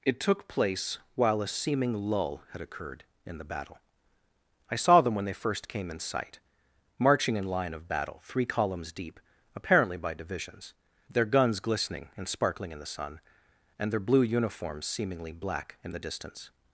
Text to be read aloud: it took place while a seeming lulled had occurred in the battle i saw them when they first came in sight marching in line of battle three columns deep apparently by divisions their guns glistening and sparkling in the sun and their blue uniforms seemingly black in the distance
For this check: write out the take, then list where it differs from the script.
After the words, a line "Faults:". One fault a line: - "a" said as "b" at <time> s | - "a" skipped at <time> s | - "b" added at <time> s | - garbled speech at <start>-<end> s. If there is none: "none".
it took place while a seeming lull had occurred in the battle i saw them when they first came in sight marching in line of battle three columns deep apparently by divisions their guns glistening and sparkling in the sun and their blue uniforms seemingly black in the distance
Faults:
- "lulled" said as "lull" at 1.9 s